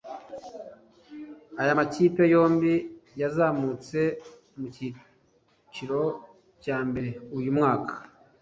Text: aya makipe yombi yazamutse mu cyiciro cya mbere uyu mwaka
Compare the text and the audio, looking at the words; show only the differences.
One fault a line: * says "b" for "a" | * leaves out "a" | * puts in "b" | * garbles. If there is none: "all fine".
all fine